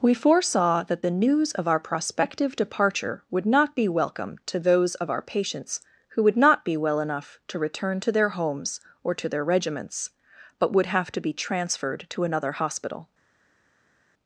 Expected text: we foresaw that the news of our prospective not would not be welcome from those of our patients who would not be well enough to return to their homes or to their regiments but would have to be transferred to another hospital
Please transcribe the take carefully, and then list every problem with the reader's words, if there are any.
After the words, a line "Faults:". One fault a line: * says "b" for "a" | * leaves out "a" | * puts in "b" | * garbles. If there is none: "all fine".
we foresaw that the news of our prospective departure would not be welcome to those of our patients who would not be well enough to return to their homes or to their regiments but would have to be transferred to another hospital
Faults:
* says "departure" for "not"
* says "to" for "from"